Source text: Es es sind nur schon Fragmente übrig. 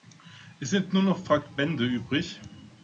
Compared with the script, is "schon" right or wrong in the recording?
wrong